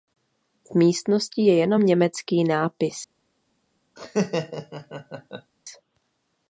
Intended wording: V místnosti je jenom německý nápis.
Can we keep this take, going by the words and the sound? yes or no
no